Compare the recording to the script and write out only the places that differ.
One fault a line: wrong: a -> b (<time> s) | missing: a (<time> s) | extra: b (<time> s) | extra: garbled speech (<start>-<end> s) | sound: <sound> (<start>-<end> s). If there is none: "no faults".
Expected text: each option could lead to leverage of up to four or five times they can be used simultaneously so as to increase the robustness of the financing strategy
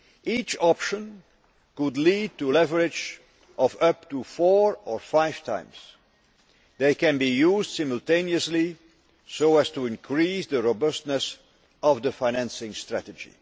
no faults